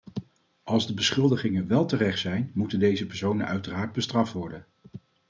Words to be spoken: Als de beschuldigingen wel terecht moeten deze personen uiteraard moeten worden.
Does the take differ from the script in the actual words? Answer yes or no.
yes